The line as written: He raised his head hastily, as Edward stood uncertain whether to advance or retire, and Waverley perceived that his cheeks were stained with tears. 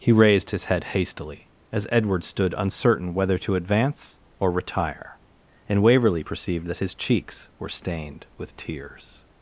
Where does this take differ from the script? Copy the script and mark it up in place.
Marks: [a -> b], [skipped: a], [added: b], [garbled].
He raised his head hastily, as Edward stood uncertain whether to advance or retire, and Waverley perceived that his cheeks were stained with tears.